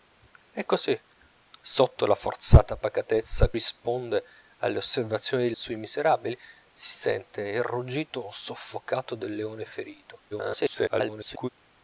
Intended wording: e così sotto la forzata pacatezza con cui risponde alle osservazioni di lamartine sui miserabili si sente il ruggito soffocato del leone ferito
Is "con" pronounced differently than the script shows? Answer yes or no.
yes